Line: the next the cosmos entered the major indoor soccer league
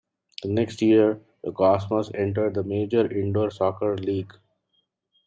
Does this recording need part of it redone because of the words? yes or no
yes